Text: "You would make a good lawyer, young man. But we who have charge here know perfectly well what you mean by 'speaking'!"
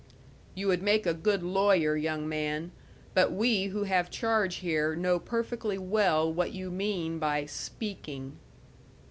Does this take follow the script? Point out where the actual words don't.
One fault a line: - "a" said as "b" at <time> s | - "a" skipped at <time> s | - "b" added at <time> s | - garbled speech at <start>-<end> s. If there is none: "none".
none